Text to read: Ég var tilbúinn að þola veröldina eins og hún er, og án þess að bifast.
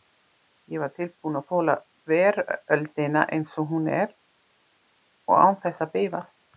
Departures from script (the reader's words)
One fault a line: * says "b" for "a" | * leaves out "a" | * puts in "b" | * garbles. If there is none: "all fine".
all fine